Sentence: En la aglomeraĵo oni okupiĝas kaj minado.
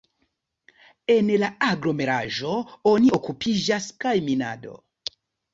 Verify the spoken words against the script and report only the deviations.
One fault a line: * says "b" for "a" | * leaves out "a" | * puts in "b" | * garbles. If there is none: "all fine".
all fine